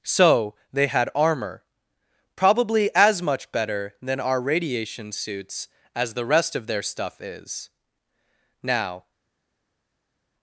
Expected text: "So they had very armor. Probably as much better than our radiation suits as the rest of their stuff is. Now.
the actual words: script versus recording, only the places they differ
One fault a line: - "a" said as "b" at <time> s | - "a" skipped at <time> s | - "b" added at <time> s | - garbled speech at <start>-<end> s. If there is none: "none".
- "very" skipped at 1.1 s